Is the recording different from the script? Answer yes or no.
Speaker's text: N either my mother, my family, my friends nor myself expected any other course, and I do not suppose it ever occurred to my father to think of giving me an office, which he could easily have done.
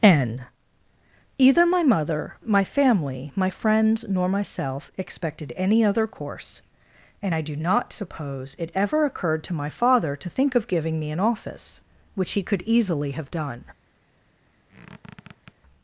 no